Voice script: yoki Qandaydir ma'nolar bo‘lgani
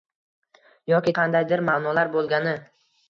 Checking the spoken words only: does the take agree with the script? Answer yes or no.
yes